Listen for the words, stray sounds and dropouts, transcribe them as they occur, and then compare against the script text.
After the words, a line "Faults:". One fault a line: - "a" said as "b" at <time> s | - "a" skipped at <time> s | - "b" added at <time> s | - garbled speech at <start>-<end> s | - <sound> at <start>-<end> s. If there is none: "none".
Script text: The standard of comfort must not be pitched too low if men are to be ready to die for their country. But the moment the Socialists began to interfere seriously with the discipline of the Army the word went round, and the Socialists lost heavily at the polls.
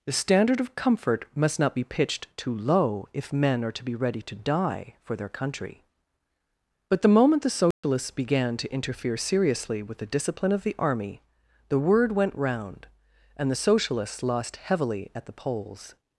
The standard of comfort must not be pitched too low if men are to be ready to die for their country. But the moment the Socialists began to interfere seriously with the discipline of the Army the word went round, and the Socialists lost heavily at the polls.
Faults:
- dropout at 7.7-7.8 s